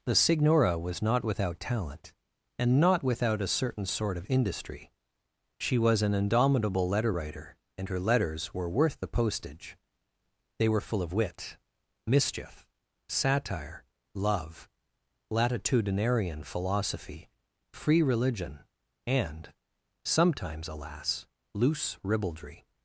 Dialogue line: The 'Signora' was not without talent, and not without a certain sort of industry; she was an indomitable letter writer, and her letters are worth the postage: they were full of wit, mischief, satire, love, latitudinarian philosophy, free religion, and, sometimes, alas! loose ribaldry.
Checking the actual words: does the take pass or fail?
fail